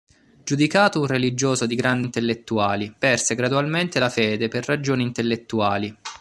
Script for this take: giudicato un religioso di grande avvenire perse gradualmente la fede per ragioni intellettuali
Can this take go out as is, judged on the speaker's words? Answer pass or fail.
fail